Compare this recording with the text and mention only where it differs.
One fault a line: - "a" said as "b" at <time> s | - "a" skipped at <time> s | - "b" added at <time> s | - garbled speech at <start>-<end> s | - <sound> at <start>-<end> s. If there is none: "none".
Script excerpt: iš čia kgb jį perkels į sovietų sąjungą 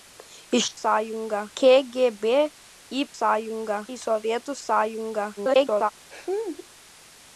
- "čia" said as "sąjungą" at 0.8 s
- "perkels" said as "sąjungą" at 3.2 s
- garbled speech at 5.4-5.9 s
- laugh at 6.1-6.7 s